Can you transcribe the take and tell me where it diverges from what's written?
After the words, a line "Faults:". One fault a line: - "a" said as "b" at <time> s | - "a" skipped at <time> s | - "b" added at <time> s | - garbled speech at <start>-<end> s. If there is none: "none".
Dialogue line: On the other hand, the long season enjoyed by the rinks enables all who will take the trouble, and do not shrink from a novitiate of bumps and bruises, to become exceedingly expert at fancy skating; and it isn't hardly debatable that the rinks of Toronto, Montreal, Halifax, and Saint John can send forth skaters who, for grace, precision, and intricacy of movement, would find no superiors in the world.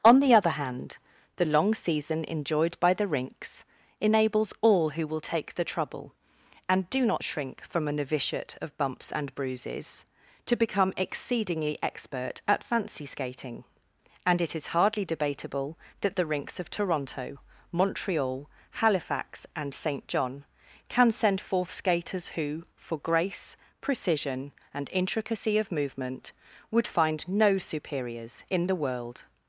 On the other hand, the long season enjoyed by the rinks enables all who will take the trouble, and do not shrink from a novitiate of bumps and bruises, to become exceedingly expert at fancy skating; and it is hardly debatable that the rinks of Toronto, Montreal, Halifax, and Saint John can send forth skaters who, for grace, precision, and intricacy of movement, would find no superiors in the world.
Faults:
- "isn't" said as "is" at 14.6 s